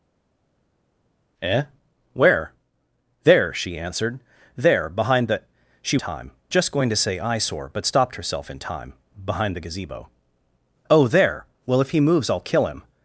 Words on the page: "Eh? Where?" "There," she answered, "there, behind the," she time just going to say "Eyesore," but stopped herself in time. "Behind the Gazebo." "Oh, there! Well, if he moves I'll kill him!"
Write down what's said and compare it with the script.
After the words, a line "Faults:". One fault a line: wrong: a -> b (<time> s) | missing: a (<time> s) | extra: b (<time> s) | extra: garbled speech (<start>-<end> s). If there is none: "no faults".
"Eh? Where?" "There," she answered, "there, behind the," she time just going to say "Eyesore," but stopped herself in time. "Behind the Gazebo." "Oh, there! Well, if he moves I'll kill him!"
Faults:
no faults